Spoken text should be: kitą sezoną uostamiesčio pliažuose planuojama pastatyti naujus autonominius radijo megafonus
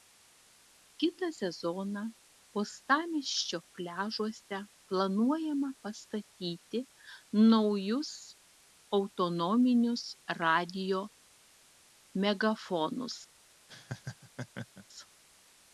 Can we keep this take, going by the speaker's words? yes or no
yes